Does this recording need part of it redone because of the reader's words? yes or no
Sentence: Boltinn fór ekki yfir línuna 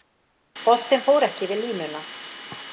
no